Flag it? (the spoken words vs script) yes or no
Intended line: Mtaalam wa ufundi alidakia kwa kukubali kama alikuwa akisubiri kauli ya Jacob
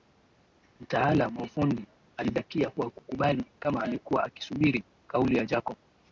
no